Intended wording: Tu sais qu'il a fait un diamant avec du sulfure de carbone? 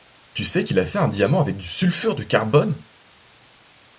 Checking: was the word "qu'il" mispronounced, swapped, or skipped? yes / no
no